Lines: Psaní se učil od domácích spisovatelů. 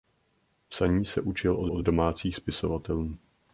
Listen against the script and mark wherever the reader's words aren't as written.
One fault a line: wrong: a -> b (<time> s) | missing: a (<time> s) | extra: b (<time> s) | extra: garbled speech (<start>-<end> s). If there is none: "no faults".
extra: od (1.7 s)